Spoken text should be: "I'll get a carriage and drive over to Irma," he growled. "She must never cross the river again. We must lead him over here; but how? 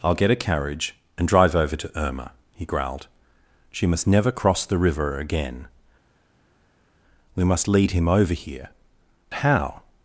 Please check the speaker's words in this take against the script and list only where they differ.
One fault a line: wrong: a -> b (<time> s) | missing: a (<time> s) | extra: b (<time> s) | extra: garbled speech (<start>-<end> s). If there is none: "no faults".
missing: but (8.7 s)